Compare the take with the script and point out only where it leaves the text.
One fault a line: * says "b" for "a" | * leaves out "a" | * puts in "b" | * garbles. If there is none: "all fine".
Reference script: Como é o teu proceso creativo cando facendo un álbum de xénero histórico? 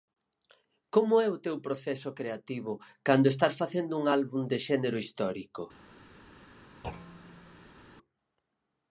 * puts in "estás"